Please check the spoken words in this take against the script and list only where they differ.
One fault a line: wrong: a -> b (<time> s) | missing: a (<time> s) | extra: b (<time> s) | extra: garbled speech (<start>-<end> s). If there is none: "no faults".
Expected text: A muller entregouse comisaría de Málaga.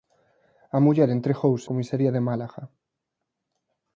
no faults